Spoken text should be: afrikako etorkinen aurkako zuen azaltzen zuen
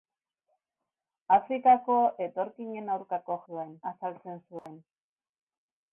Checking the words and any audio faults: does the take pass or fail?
fail